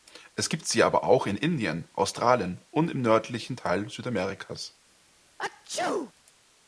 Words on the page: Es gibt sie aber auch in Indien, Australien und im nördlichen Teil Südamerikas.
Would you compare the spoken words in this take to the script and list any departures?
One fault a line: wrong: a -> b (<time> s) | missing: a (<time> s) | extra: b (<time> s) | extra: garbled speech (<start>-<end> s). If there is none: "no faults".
no faults